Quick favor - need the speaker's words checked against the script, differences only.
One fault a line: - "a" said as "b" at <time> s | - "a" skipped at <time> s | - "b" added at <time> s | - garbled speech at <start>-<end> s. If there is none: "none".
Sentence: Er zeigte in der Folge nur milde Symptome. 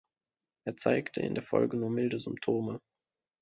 none